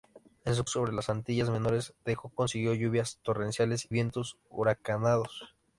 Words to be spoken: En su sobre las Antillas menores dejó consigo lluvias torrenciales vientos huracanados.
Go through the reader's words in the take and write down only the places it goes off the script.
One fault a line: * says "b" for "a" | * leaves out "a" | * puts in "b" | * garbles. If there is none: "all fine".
all fine